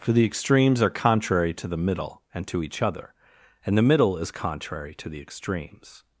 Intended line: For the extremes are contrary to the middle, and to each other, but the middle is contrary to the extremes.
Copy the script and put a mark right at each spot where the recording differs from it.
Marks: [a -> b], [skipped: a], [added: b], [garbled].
For the extremes are contrary to the middle, and to each other, [but -> and] the middle is contrary to the extremes.